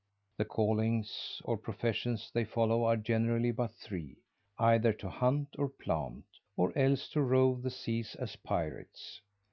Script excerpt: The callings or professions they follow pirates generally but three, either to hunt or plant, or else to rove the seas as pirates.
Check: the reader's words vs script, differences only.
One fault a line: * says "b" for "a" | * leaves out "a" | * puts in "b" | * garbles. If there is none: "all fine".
* says "are" for "pirates"